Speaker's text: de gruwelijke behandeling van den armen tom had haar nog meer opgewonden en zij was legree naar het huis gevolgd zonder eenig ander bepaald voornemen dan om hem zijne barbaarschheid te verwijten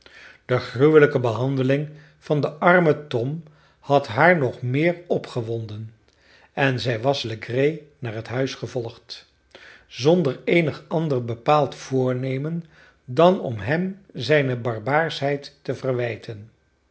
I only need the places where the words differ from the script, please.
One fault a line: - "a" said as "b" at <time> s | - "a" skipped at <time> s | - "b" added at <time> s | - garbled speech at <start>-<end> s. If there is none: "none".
none